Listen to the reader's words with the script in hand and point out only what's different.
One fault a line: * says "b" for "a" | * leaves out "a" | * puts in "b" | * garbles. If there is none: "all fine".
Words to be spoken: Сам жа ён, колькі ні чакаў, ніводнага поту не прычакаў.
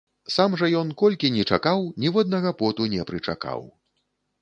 all fine